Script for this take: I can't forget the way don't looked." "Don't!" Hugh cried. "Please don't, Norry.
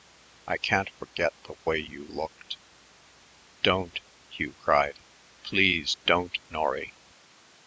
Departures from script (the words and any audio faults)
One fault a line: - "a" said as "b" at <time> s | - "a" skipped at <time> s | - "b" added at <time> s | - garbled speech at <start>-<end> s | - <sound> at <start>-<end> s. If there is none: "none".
- "don't" said as "you" at 1.8 s